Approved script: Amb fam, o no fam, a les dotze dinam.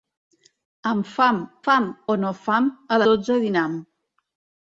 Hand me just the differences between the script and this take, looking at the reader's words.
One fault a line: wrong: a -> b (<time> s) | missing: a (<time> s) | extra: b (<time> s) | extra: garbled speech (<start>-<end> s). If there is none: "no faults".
extra: fam (1.6 s)
missing: les (3.0 s)